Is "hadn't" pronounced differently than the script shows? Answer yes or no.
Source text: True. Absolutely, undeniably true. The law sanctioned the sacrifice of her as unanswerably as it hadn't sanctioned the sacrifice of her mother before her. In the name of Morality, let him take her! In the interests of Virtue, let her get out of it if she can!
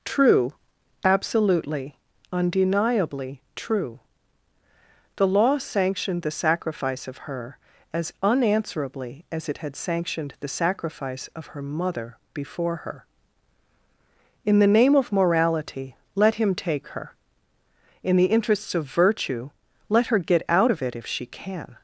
yes